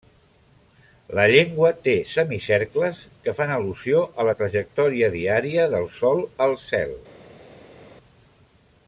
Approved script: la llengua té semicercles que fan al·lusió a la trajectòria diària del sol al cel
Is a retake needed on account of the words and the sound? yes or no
no